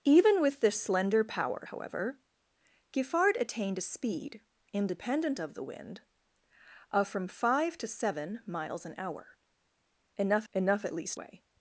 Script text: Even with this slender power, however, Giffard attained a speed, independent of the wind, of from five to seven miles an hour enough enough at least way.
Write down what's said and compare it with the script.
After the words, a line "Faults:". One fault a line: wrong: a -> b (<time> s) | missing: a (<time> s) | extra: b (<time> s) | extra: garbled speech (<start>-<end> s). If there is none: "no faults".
Even with this slender power, however, Giffard attained a speed, independent of the wind, of from five to seven miles an hour enough enough at least way.
Faults:
no faults